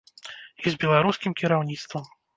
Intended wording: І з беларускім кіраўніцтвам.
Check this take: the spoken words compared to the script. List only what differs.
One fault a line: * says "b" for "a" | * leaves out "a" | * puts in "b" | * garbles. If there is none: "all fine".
all fine